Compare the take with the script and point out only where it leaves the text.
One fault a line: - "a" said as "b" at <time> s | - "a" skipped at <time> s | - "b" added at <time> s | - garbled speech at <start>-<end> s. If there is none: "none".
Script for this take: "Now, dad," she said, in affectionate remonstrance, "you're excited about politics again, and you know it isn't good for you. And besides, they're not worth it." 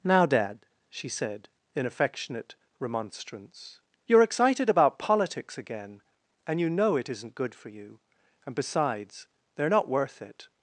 none